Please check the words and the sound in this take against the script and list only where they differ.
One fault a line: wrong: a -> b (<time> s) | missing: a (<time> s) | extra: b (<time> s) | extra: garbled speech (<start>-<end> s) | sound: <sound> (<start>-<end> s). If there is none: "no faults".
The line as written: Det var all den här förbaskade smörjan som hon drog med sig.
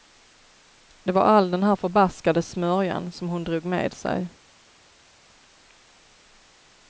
no faults